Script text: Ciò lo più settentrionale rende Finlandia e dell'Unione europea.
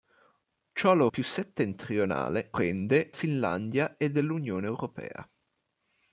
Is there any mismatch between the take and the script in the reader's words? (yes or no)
no